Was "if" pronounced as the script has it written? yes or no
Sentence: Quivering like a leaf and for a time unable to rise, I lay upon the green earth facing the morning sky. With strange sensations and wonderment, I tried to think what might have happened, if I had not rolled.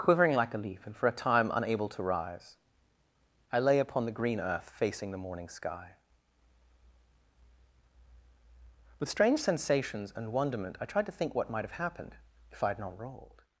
yes